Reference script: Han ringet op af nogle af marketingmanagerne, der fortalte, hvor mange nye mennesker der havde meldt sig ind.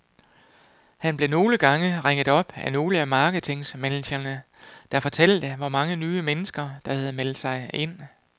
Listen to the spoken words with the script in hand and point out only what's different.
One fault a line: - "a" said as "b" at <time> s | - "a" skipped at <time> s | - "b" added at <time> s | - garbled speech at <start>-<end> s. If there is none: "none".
- "blev nogle gange" added at 1.2 s